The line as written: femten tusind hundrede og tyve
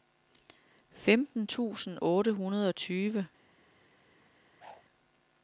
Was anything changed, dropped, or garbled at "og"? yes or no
no